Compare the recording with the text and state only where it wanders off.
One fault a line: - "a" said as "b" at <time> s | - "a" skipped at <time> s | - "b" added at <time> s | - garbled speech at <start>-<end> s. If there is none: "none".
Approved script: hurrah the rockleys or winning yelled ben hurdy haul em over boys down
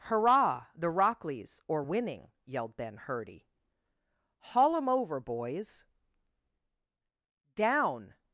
none